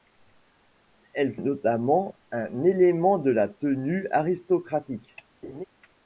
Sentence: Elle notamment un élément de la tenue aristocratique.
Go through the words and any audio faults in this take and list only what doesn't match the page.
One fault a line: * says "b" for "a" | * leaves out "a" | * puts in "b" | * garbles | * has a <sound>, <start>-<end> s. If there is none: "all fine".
* has a laugh, 5.4-5.6 s